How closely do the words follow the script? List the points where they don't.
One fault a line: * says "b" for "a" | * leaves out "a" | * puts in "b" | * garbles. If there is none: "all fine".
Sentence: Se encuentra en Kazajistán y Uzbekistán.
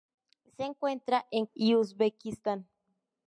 * leaves out "Kazajistán"